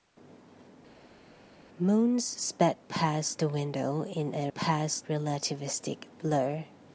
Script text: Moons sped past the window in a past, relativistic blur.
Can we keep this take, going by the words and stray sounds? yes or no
yes